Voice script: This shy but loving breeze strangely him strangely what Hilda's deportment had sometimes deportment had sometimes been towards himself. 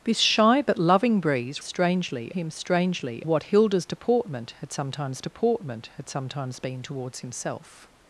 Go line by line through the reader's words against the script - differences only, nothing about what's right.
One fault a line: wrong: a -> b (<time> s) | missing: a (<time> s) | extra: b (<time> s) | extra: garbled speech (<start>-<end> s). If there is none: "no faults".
no faults